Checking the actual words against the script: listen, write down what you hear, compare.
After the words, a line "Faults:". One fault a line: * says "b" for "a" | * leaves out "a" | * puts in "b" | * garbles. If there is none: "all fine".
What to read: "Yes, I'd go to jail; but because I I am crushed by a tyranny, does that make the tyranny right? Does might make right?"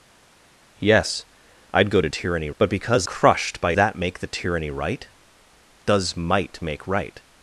"Yes, I'd go to tyranny; but because crushed by that make the tyranny right? Does might make right?"
Faults:
* says "tyranny" for "jail"
* leaves out "I I am"
* leaves out "a tyranny does"